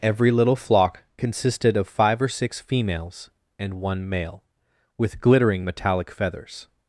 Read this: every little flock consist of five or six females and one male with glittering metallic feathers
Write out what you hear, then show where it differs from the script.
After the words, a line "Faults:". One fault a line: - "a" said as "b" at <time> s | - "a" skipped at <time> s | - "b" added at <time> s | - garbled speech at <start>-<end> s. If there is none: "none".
every little flock consisted of five or six females and one male with glittering metallic feathers
Faults:
- "consist" said as "consisted" at 1.1 s